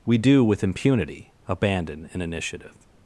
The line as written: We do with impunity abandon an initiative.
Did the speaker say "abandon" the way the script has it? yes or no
yes